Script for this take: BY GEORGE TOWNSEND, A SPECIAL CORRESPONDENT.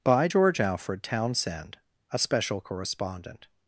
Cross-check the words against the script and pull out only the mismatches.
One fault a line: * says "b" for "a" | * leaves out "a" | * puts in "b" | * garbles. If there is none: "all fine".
* puts in "ALFRED"